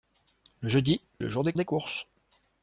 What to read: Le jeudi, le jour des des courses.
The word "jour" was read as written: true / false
true